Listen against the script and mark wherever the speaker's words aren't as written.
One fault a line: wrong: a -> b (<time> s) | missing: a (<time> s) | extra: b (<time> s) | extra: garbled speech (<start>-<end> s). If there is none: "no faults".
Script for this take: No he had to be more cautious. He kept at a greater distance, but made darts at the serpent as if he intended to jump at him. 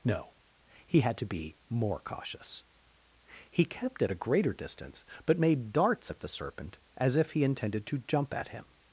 no faults